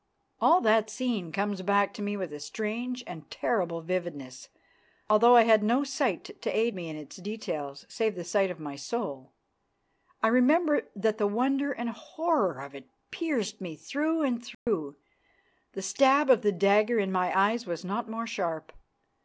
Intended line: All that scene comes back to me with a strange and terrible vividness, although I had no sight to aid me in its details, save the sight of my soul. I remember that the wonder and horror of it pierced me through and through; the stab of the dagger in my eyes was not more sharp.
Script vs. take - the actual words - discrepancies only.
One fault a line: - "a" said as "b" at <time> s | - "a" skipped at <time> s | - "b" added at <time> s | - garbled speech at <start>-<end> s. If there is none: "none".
none